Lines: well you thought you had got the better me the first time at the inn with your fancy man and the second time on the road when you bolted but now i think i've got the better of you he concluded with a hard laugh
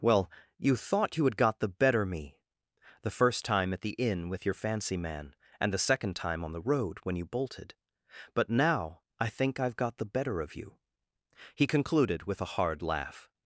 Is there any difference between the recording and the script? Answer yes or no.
no